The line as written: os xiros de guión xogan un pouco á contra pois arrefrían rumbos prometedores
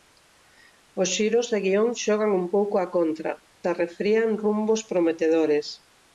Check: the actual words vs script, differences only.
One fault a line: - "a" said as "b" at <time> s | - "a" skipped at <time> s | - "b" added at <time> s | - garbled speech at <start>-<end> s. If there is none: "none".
- "pois" skipped at 3.3 s